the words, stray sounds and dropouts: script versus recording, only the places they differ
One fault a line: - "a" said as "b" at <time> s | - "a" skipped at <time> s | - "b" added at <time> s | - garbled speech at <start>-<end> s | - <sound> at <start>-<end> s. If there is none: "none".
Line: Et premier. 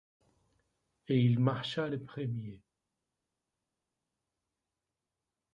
- "il marcha le" added at 1.2 s